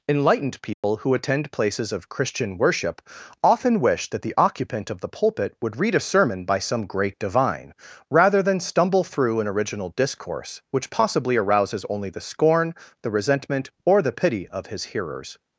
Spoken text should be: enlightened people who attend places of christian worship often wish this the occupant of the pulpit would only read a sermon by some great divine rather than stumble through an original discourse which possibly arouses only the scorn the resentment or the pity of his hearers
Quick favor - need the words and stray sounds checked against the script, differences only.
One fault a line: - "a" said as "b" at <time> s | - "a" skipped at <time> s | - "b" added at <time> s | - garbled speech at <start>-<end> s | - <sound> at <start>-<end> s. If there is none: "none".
- dropout at 0.7-0.8 s
- "this" said as "that" at 4.1 s
- "only" skipped at 5.8 s